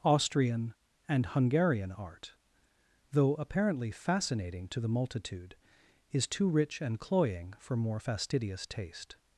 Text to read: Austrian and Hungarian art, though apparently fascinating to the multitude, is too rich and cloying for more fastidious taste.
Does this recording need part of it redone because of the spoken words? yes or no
no